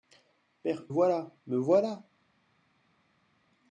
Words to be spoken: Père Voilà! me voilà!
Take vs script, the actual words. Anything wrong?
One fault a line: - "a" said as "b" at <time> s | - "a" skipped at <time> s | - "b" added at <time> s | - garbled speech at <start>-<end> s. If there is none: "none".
none